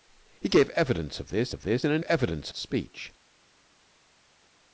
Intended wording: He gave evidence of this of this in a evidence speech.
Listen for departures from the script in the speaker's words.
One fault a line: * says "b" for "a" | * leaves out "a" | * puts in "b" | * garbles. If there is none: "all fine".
all fine